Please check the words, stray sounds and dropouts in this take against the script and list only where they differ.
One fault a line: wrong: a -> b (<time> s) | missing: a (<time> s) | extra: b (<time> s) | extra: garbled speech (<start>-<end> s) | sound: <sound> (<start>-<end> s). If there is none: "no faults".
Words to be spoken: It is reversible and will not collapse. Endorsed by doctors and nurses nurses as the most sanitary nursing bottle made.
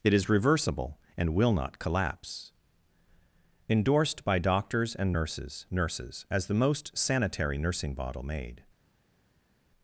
no faults